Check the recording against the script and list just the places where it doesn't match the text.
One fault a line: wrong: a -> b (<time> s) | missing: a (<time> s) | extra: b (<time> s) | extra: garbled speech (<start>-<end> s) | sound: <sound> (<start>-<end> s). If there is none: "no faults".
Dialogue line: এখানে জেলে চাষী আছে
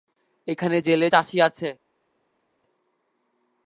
no faults